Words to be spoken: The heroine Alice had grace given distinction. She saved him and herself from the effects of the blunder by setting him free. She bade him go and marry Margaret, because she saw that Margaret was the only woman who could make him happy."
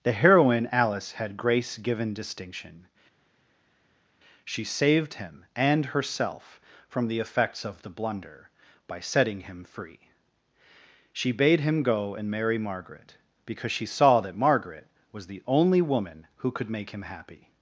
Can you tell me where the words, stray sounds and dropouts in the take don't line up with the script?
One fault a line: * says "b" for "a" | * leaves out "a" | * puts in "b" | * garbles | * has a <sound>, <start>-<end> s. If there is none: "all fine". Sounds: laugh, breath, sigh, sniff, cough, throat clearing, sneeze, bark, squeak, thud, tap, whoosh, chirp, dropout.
all fine